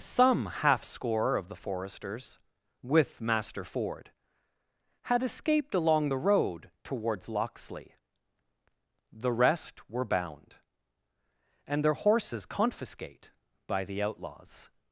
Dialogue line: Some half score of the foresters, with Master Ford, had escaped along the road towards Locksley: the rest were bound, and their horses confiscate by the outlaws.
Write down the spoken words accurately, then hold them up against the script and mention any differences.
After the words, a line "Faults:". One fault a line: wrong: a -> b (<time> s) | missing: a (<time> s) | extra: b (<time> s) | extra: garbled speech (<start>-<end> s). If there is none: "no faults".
Some half score of the foresters, with Master Ford, had escaped along the road towards Locksley: the rest were bound, and their horses confiscate by the outlaws.
Faults:
no faults